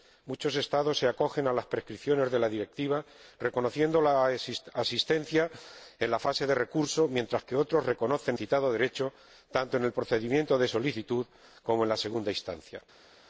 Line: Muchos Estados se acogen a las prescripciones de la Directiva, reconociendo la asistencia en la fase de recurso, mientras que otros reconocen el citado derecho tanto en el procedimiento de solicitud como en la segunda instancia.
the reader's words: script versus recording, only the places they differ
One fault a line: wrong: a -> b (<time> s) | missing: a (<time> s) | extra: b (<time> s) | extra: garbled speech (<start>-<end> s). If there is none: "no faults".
missing: el (8.4 s)